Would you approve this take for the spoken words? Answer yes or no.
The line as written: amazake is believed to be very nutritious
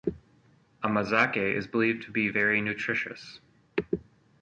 yes